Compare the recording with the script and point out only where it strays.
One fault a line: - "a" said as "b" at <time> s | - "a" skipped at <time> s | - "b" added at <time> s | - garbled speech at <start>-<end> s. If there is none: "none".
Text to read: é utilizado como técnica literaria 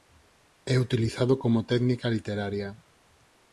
none